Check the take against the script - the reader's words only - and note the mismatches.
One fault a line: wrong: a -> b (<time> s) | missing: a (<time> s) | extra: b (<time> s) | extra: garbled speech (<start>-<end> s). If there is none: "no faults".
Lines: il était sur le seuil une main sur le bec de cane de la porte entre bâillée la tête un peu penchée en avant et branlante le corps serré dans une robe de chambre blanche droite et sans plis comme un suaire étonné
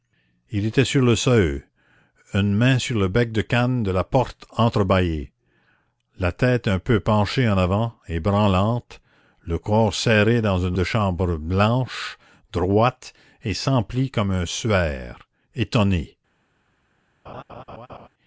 missing: robe (10.8 s)